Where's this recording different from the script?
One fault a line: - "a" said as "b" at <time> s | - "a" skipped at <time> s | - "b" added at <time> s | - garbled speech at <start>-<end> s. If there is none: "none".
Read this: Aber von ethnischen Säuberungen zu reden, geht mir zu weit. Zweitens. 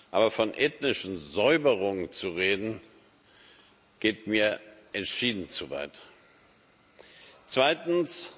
- "entschieden" added at 4.9 s